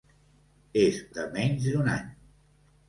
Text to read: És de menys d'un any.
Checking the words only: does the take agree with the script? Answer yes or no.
yes